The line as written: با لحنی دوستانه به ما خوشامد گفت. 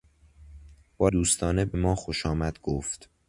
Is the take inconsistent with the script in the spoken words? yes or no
yes